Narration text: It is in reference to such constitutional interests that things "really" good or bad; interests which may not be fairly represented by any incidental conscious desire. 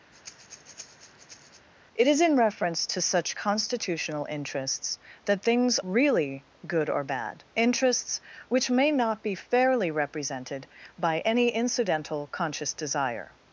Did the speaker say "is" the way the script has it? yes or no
yes